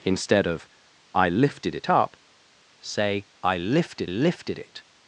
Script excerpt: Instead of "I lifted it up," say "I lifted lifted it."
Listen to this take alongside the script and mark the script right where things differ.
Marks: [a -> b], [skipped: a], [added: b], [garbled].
Instead of "I lifted it up," say "I lifted lifted it."